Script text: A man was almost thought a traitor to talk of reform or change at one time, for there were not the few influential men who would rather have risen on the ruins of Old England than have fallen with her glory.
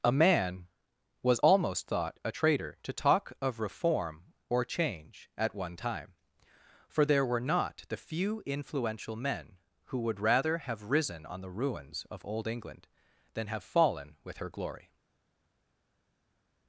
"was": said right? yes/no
yes